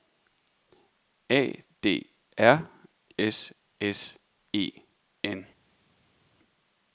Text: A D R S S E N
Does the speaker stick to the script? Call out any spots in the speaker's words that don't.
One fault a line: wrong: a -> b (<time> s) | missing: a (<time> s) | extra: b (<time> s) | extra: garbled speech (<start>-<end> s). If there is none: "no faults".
no faults